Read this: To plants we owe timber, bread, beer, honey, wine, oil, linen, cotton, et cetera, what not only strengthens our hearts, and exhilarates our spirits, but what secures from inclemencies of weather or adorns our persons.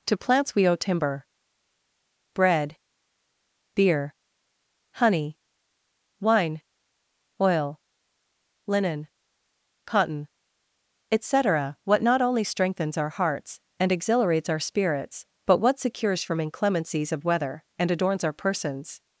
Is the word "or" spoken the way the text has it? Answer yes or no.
no